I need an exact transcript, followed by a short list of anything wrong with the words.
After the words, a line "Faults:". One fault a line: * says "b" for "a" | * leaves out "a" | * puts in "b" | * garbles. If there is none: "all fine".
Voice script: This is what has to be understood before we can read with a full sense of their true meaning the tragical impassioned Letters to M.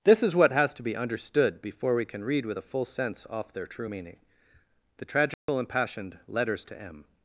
This is what has to be understood before we can read with a full sense off their true meaning the tragical impassioned Letters to M.
Faults:
* says "off" for "of"